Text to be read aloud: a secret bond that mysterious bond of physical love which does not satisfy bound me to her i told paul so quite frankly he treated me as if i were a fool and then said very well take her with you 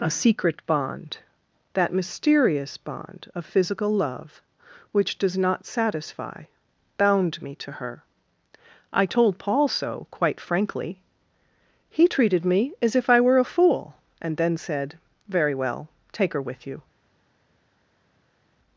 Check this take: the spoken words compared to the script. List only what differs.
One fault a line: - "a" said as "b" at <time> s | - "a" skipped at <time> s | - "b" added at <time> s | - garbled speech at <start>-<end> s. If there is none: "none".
none